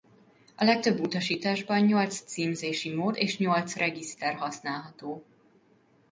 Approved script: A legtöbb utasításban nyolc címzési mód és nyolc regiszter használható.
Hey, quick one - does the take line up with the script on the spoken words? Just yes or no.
yes